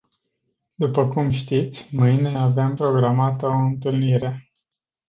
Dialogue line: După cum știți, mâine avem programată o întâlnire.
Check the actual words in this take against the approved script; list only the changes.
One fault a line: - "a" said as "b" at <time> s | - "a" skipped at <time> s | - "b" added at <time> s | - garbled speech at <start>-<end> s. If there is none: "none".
none